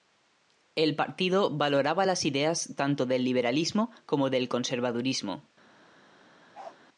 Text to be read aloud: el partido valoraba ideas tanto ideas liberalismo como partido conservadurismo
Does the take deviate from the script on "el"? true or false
false